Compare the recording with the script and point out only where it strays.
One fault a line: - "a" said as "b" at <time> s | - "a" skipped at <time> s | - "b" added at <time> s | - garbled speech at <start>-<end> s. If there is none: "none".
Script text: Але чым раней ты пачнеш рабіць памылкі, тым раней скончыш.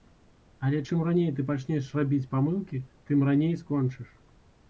none